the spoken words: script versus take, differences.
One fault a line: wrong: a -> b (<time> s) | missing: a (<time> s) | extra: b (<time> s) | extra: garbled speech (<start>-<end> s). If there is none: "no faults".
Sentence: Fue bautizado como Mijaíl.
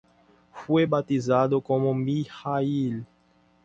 no faults